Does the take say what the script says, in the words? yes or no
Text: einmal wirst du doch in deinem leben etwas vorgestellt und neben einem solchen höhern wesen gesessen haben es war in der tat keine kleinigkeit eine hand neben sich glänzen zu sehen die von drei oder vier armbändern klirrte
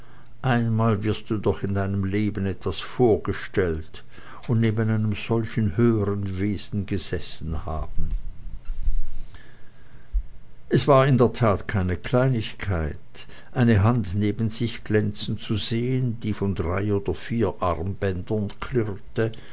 yes